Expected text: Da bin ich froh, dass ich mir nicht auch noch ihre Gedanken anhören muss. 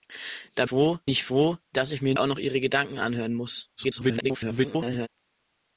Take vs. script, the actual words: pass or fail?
fail